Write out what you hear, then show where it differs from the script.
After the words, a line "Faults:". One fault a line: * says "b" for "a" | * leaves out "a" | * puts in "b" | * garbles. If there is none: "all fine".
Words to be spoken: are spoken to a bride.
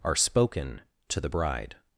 are spoken to the bride.
Faults:
* says "the" for "a"